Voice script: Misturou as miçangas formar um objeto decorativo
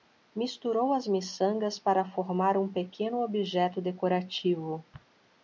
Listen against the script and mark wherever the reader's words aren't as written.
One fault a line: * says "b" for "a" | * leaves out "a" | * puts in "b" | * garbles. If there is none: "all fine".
* puts in "para"
* puts in "pequeno"